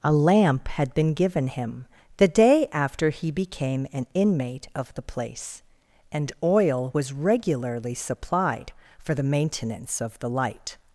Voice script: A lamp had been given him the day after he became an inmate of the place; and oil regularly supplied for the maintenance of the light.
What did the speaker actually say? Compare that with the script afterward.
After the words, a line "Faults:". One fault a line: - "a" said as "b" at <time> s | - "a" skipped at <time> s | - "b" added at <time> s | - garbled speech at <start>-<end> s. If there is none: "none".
A lamp had been given him the day after he became an inmate of the place; and oil was regularly supplied for the maintenance of the light.
Faults:
- "was" added at 6.9 s